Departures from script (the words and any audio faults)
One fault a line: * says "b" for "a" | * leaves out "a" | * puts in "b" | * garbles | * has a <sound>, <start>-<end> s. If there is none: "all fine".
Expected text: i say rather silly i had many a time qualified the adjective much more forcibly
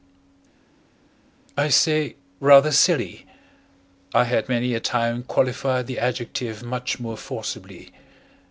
all fine